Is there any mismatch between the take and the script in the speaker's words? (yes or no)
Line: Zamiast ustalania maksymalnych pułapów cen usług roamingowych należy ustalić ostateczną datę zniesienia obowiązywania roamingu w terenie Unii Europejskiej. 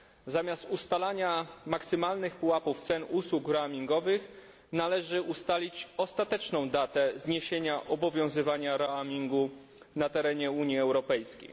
yes